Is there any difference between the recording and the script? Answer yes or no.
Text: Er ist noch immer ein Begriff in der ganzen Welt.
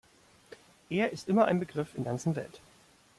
yes